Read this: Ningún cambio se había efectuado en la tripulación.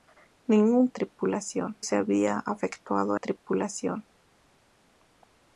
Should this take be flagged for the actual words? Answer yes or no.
yes